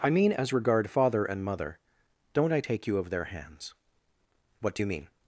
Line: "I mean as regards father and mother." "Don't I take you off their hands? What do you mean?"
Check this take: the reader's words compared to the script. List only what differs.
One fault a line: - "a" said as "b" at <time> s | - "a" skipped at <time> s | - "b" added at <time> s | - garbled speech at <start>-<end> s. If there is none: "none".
- "regards" said as "regard" at 0.5 s
- "off" said as "of" at 3.0 s